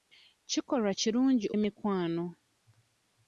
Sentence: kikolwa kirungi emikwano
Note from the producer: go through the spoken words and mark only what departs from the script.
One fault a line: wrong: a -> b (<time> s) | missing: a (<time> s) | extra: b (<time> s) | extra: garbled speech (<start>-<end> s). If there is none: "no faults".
no faults